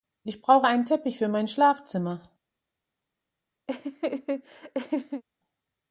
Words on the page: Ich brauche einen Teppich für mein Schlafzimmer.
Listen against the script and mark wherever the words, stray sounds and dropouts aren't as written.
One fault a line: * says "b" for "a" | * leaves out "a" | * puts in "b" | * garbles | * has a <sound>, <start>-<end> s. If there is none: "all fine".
* has a laugh, 3.7-5.2 s